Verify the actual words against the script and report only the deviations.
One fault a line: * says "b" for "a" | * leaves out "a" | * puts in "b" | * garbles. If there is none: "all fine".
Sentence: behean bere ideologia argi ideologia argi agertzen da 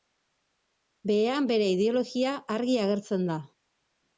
* leaves out "ideologia argi"